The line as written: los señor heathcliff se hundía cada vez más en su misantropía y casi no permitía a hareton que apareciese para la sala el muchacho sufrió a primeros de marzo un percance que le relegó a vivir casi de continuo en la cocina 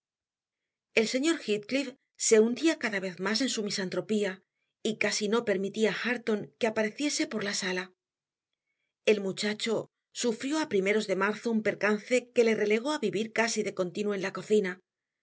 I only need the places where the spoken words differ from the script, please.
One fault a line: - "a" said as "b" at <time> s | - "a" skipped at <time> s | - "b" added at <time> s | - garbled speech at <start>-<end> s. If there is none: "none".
- "los" said as "el" at 0.9 s
- "para" said as "por" at 7.3 s